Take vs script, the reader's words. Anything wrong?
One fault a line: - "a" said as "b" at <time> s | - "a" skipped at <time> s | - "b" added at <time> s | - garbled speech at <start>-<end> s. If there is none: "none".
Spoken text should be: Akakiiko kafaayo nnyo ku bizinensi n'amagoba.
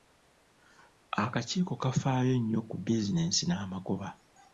none